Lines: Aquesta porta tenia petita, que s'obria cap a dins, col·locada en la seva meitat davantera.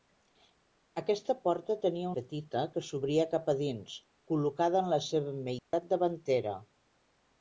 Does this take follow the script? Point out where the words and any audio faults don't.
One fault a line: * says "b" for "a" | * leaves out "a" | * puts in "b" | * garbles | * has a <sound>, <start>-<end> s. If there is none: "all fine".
* has a dropout, 5.6-5.7 s